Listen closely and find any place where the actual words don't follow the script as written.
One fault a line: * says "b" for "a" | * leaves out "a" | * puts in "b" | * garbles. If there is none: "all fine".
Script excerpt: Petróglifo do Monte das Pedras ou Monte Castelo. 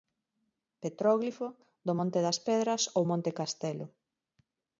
all fine